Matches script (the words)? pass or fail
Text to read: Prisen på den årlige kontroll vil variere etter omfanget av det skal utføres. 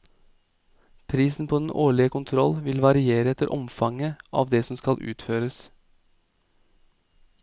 fail